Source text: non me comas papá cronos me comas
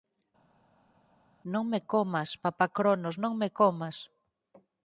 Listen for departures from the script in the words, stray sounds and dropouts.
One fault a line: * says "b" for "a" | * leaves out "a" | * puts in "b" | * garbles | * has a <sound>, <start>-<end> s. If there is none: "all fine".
* puts in "non"